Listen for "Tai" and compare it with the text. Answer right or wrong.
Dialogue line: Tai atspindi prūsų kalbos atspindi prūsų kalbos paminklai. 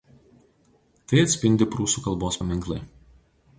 right